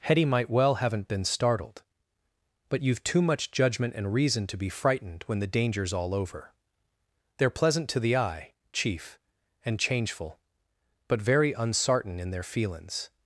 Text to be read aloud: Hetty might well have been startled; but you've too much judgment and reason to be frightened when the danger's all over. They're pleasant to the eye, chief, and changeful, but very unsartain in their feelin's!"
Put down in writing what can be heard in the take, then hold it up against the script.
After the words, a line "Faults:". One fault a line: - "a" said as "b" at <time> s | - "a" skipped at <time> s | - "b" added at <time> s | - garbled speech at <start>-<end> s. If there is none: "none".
Hetty might well haven't been startled; but you've too much judgment and reason to be frightened when the danger's all over. They're pleasant to the eye, chief, and changeful, but very unsartain in their feelin's!"
Faults:
- "have" said as "haven't" at 0.8 s